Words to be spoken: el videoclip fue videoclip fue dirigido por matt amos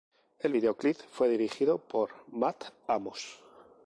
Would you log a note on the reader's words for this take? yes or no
yes